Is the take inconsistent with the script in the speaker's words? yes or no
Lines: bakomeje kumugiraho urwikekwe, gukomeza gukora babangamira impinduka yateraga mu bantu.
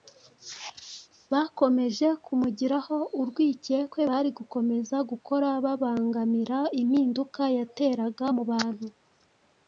yes